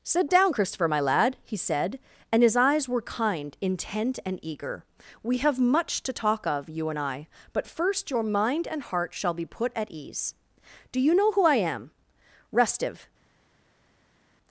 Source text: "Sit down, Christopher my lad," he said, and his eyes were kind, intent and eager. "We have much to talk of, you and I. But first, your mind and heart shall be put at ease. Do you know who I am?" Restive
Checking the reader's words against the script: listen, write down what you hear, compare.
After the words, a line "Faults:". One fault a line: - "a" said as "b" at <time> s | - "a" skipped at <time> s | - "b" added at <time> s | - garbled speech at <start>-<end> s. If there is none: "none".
"Sit down, Christopher my lad," he said, and his eyes were kind, intent and eager. "We have much to talk of, you and I. But first, your mind and heart shall be put at ease. Do you know who I am?" Restive
Faults:
none